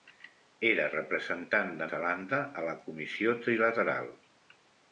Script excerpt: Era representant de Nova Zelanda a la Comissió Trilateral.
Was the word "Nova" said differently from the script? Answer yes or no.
yes